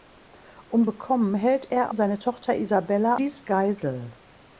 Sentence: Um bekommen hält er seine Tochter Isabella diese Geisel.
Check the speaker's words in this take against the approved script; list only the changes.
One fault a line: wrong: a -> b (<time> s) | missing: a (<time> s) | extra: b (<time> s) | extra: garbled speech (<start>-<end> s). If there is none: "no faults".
no faults